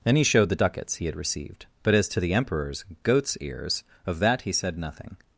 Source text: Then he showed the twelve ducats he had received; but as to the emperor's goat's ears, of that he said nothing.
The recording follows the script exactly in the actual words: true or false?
false